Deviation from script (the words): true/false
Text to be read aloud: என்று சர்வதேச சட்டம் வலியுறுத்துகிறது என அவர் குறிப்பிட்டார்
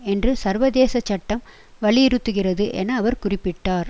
false